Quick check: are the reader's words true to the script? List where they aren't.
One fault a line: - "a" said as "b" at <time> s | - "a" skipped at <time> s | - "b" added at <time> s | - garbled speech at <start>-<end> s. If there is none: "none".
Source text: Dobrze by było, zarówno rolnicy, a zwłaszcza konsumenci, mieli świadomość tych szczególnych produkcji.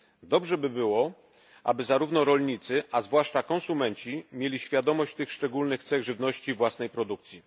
- "aby" added at 1.6 s
- "cech żywności własnej" added at 5.8 s